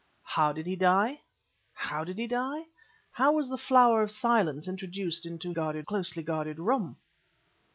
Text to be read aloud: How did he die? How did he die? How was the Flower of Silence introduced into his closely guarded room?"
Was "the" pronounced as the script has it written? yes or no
yes